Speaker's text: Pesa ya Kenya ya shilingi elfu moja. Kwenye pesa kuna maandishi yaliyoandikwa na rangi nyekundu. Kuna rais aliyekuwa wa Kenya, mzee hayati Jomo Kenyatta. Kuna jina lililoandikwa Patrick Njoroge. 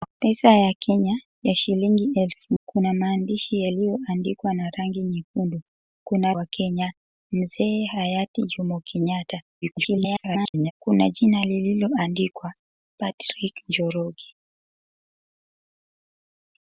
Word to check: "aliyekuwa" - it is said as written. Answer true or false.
false